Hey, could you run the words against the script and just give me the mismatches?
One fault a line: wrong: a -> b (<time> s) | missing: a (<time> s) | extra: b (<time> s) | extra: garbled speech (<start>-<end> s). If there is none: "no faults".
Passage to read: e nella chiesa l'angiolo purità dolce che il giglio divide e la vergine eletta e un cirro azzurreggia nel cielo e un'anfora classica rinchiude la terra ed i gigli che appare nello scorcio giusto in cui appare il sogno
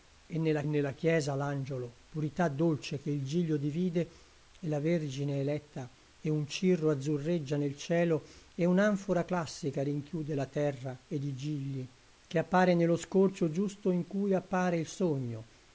extra: nella (0.7 s)